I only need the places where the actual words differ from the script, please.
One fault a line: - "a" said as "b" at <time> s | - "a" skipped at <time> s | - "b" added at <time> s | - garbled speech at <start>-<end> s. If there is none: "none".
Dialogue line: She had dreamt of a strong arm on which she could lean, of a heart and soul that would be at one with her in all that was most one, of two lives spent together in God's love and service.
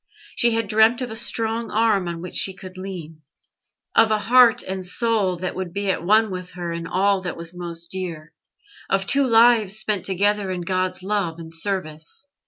- "one" said as "dear" at 7.9 s